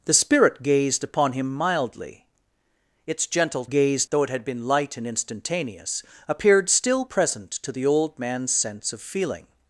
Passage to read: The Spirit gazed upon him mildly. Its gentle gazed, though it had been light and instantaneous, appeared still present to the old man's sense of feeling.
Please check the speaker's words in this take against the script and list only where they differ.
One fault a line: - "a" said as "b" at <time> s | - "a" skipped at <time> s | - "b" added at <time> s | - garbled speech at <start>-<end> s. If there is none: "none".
none